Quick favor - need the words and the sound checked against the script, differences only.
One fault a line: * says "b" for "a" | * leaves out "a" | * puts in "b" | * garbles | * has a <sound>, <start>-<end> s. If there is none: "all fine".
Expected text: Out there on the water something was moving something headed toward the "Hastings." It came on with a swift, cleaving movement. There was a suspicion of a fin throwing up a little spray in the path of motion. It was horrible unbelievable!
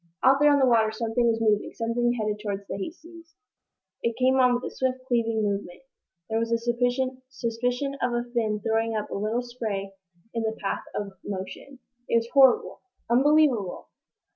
all fine